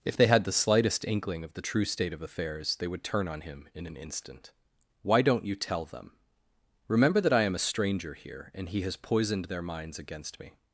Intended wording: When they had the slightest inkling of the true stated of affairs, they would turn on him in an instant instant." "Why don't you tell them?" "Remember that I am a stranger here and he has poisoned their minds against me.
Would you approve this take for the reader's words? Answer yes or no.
no